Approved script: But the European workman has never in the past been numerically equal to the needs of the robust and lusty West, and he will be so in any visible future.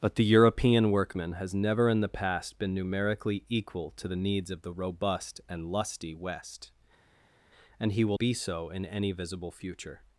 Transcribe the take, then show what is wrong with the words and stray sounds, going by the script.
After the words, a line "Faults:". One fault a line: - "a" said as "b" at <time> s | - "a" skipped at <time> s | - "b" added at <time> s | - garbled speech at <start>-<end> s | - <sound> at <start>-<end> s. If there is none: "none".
But the European workman has never in the past been numerically equal to the needs of the robust and lusty West, and he will be so in any visible future.
Faults:
none